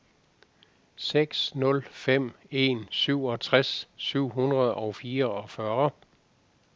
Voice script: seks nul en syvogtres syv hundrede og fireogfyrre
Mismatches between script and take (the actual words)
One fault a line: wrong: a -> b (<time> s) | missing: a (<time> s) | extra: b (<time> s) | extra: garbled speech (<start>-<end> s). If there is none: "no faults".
extra: fem (1.9 s)